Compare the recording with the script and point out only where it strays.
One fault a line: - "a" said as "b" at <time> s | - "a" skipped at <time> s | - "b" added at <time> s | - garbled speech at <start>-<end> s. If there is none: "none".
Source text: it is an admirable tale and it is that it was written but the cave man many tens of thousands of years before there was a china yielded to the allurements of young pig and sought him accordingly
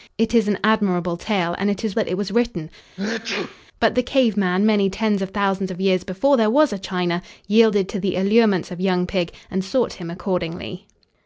none